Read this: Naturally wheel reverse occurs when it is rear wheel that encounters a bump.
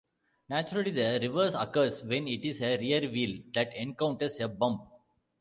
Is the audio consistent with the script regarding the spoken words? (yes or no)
no